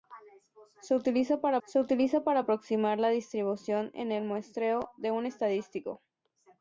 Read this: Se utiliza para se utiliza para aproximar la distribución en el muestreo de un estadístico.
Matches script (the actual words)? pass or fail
pass